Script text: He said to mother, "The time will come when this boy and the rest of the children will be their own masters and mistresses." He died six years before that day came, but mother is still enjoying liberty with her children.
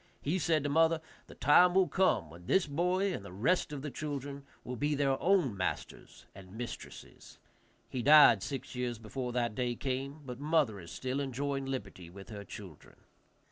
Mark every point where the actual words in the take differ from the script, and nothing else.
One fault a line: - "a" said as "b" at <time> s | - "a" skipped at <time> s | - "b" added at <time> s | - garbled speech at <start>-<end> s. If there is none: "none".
none